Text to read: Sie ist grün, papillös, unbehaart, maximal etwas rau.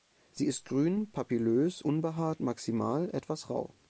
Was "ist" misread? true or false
false